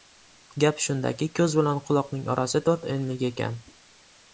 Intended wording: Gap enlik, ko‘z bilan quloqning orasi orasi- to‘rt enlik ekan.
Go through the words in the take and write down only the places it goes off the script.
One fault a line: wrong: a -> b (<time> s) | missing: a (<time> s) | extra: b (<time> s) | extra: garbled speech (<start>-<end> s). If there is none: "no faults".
wrong: enlik -> shundaki (0.8 s)
missing: orasi (2.7 s)